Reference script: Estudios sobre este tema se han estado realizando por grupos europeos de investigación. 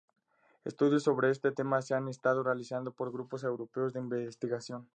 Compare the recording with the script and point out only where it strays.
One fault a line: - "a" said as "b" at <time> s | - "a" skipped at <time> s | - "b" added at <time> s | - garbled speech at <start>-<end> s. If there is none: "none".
none